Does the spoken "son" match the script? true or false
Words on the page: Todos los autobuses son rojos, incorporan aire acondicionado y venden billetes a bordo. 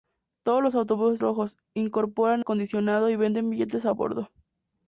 false